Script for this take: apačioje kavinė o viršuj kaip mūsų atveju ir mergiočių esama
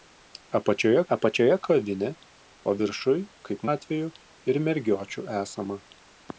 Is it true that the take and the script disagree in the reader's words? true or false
true